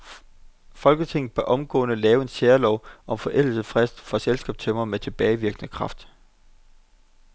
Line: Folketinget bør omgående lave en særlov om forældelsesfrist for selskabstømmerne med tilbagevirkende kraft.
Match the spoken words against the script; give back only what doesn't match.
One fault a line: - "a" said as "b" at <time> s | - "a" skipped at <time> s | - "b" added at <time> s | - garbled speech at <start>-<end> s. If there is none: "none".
none